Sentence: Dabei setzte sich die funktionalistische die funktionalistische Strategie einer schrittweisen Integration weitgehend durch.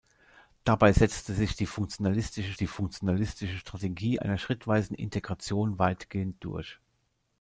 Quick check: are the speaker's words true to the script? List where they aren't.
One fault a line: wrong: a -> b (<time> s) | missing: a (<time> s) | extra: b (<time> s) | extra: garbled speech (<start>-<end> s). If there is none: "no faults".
no faults